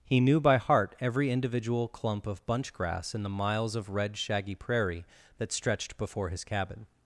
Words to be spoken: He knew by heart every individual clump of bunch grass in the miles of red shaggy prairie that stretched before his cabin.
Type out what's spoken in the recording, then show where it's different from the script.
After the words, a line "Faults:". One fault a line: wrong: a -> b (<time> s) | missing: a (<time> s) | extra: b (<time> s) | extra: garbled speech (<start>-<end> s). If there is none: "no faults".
He knew by heart every individual clump of bunch grass in the miles of red shaggy prairie that stretched before his cabin.
Faults:
no faults